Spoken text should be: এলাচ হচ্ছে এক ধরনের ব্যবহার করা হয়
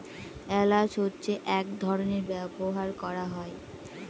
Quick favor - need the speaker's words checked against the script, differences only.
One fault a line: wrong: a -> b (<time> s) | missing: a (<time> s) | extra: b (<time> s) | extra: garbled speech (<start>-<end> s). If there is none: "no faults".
no faults